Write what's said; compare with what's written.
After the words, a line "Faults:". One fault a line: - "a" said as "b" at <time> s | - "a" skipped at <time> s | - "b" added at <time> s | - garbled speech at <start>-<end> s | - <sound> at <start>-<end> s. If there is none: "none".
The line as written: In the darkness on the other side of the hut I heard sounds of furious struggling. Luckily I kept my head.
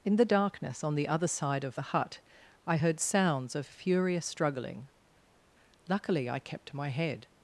In the darkness on the other side of the hut I heard sounds of furious struggling. Luckily I kept my head.
Faults:
none